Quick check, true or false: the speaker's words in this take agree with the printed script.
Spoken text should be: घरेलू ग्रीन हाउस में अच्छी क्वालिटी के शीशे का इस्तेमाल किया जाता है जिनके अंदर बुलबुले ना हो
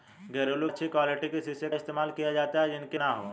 false